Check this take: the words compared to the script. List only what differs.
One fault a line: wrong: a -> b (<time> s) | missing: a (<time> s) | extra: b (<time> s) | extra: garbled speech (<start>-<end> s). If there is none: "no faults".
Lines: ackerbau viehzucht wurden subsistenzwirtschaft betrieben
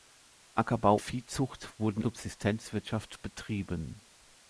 no faults